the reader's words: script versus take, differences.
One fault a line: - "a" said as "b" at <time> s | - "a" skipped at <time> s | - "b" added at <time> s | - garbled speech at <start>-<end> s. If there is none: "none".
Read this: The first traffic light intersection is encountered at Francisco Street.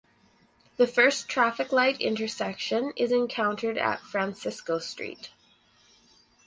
none